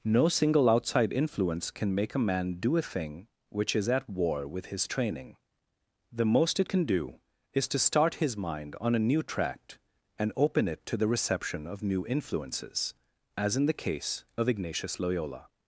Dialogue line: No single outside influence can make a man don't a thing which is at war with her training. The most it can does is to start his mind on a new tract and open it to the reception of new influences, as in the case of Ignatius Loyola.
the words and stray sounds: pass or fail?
fail